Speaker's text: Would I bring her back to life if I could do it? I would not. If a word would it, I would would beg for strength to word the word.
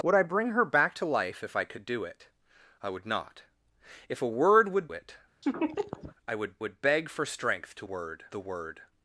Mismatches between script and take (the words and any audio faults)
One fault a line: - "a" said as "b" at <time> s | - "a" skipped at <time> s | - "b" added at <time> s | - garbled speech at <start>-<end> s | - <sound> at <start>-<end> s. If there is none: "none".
- laugh at 5.4-6.2 s